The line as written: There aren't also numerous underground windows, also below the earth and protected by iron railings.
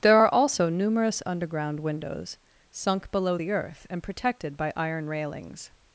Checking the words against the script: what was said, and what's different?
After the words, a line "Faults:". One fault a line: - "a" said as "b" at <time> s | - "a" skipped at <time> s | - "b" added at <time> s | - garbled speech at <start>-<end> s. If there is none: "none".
There are also numerous underground windows, sunk below the earth and protected by iron railings.
Faults:
- "aren't" said as "are" at 0.1 s
- "also" said as "sunk" at 2.7 s